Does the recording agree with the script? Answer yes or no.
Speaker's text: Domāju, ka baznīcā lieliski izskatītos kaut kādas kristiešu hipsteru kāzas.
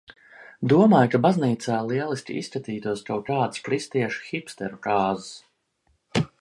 yes